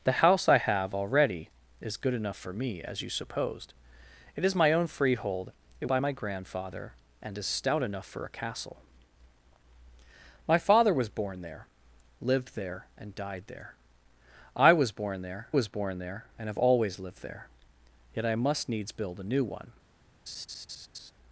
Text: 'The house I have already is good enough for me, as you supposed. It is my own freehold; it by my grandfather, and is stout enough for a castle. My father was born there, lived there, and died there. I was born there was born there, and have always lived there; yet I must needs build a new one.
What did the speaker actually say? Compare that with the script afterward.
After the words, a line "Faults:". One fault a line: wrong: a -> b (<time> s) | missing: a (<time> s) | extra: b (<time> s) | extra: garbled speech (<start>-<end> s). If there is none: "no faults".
'The house I have already is good enough for me, as you supposed. It is my own freehold; it by my grandfather, and is stout enough for a castle. My father was born there, lived there, and died there. I was born there was born there, and have always lived there; yet I must needs build a new one.
Faults:
no faults